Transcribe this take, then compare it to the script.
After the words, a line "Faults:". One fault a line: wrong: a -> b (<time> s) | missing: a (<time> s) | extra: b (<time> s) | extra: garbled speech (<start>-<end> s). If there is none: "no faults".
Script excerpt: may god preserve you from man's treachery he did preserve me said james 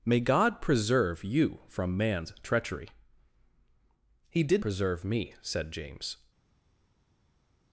may god preserve you from man's treachery he did preserve me said james
Faults:
no faults